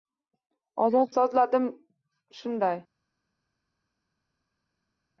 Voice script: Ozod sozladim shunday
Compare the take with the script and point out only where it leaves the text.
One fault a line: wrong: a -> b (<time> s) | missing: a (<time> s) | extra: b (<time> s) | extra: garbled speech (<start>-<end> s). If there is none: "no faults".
no faults